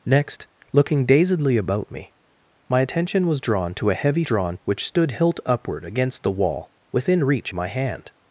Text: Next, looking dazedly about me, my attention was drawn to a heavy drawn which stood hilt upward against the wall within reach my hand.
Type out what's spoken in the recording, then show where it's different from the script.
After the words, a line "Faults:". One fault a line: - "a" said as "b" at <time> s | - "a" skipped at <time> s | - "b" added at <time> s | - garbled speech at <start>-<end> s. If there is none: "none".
Next, looking dazedly about me, my attention was drawn to a heavy drawn which stood hilt upward against the wall within reach my hand.
Faults:
none